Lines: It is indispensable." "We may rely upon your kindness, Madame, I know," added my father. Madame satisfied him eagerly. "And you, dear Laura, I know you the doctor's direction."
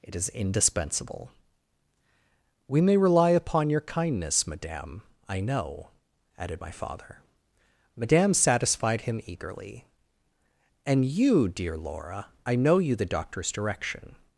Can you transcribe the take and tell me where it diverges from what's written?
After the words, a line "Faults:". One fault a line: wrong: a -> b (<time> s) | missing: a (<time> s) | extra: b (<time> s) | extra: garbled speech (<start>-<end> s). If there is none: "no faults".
It is indispensable." "We may rely upon your kindness, Madame, I know," added my father. Madame satisfied him eagerly. "And you, dear Laura, I know you the doctor's direction."
Faults:
no faults